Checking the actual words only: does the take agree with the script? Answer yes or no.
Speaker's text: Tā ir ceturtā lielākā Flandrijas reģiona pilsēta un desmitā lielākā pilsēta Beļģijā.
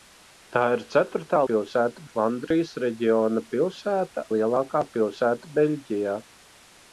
no